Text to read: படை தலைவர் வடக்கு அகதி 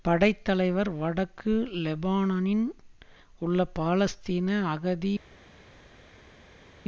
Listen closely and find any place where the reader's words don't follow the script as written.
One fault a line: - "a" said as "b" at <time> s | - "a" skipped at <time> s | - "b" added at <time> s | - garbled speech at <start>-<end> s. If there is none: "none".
- "லெபனானின் உள்ள பாலஸ்தீன" added at 1.8 s